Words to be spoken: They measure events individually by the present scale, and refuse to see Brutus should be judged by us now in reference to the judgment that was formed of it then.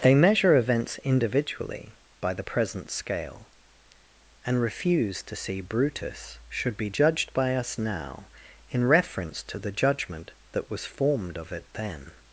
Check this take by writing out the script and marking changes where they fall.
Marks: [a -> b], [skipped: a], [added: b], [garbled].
They measure events individually by the present scale, and refuse to see Brutus should be judged by us now in reference to the judgment that was formed of it then.